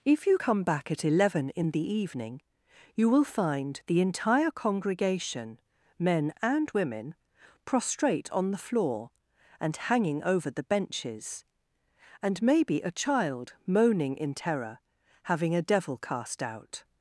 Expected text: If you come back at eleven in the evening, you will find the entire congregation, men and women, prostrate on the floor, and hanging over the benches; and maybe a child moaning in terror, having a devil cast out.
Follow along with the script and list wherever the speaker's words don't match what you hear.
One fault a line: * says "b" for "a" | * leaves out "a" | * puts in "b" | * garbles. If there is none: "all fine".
all fine